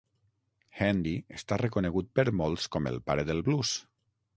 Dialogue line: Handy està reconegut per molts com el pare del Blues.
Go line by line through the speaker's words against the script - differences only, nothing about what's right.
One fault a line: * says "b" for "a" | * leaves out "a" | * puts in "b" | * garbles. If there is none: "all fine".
all fine